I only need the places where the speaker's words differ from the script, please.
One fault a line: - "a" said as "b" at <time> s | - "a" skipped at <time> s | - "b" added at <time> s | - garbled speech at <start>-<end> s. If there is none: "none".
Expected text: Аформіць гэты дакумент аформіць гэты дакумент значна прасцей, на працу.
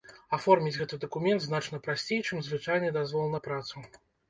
- "аформіць гэты дакумент значна прасцей" said as "значна прасцей чым звычайны дазвол" at 1.5 s